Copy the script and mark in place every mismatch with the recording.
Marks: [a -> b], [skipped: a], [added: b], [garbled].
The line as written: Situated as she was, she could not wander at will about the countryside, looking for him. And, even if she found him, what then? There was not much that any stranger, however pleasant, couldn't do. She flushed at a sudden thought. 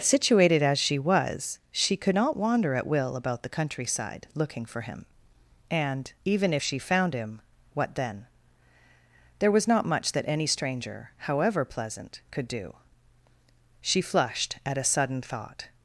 Situated as she was, she could not wander at will about the countryside, looking for him. And, even if she found him, what then? There was not much that any stranger, however pleasant, [couldn't -> could] do. She flushed at a sudden thought.